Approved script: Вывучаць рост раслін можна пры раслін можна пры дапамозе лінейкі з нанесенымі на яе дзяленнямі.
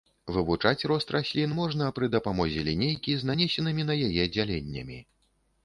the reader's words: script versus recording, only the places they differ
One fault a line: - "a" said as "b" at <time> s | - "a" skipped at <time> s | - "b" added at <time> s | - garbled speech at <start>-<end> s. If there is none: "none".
- "раслін можна пры" skipped at 2.1 s